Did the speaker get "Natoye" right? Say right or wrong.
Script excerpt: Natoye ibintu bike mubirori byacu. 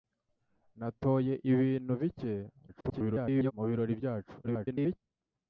right